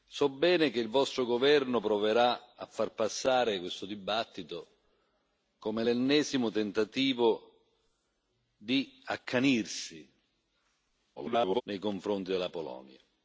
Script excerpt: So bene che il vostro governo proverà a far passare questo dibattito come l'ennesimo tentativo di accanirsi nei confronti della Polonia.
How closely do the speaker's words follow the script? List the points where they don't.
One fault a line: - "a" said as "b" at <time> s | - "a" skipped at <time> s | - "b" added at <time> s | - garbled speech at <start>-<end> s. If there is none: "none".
- garbled speech at 11.2-11.6 s